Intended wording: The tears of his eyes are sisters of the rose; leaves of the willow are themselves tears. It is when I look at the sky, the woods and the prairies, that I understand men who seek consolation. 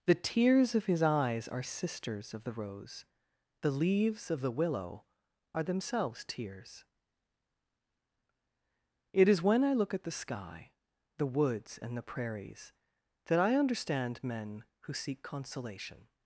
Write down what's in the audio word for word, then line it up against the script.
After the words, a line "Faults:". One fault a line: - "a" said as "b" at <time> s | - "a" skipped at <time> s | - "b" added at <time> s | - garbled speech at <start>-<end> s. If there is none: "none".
The tears of his eyes are sisters of the rose; the leaves of the willow are themselves tears. It is when I look at the sky, the woods and the prairies, that I understand men who seek consolation.
Faults:
- "the" added at 3.6 s